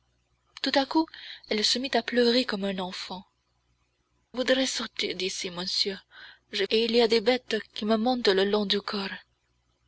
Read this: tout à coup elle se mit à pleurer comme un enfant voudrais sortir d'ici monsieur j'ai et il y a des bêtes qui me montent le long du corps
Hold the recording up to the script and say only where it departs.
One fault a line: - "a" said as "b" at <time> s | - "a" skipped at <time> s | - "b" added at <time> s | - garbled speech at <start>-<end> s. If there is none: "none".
none